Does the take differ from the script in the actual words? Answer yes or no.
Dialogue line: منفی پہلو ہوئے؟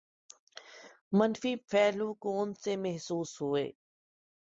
yes